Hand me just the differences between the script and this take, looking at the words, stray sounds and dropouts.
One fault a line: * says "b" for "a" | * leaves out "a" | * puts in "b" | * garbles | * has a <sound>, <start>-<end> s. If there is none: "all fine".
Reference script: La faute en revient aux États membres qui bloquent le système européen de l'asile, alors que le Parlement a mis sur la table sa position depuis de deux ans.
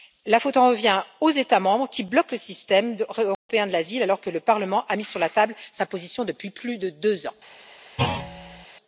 * has a dropout, 3.3-3.5 s
* puts in "plus"
* has a thud, 8.0-8.7 s